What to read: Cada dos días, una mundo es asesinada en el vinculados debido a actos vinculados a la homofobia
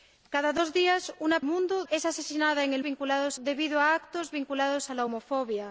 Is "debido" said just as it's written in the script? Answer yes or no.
yes